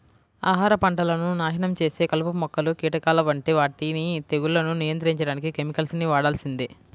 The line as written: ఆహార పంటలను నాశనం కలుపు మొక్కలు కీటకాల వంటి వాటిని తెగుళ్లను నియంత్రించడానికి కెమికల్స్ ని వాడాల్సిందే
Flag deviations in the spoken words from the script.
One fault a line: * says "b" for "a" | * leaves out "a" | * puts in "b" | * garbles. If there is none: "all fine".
* puts in "చేసే"